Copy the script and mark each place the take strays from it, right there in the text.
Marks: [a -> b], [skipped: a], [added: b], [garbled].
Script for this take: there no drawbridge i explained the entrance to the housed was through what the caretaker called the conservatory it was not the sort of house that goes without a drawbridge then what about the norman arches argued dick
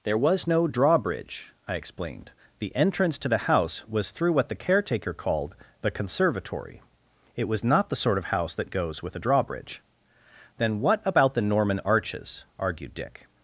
there [added: was] no drawbridge i explained the entrance to the [housed -> house] was through what the caretaker called the conservatory it was not the sort of house that goes [without -> with] a drawbridge then what about the norman arches argued dick